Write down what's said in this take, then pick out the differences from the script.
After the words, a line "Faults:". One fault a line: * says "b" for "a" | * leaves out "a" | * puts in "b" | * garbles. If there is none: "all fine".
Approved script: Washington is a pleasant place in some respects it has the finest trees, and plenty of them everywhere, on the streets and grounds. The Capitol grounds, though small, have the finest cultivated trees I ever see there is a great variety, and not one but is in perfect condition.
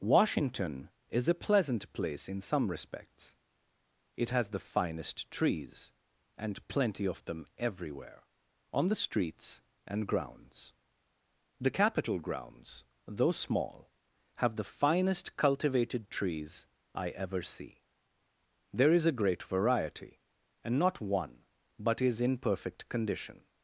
Washington is a pleasant place in some respects it has the finest trees, and plenty of them everywhere, on the streets and grounds. The Capitol grounds, though small, have the finest cultivated trees I ever see there is a great variety, and not one but is in perfect condition.
Faults:
all fine